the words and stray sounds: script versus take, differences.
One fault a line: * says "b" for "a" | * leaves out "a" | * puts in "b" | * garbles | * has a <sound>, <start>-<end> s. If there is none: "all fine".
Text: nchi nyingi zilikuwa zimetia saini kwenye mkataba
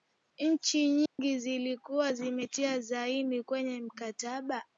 * has a dropout, 1.1-1.2 s